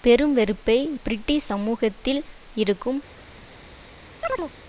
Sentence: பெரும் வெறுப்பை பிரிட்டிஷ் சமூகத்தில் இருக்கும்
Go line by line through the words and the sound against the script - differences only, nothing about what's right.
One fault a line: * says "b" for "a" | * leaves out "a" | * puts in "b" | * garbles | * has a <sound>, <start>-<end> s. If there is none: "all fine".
* has a chirp, 4.2-4.5 s